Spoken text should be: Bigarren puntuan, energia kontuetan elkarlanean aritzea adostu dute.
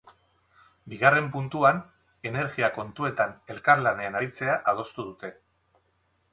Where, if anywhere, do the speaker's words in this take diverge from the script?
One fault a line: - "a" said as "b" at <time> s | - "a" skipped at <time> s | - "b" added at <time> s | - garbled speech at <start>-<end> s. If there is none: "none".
none